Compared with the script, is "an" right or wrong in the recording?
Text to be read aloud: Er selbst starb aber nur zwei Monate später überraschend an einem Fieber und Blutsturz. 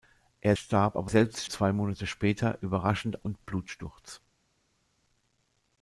wrong